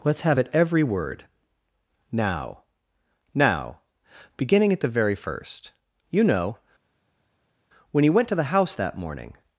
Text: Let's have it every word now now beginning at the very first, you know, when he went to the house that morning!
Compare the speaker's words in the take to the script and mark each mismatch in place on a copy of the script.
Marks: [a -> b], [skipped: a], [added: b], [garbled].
Let's have it every word now now beginning at the very first, you know, when he went to the house that morning!